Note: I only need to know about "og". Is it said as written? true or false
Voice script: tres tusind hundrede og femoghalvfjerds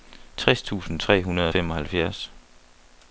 true